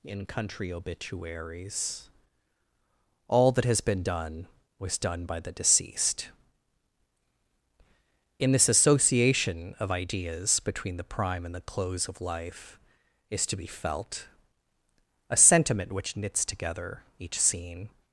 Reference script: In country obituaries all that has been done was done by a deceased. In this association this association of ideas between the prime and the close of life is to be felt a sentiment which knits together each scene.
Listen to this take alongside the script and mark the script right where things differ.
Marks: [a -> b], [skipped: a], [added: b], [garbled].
In country obituaries all that has been done was done by [a -> the] deceased. In this association [skipped: this association] of ideas between the prime and the close of life is to be felt a sentiment which knits together each scene.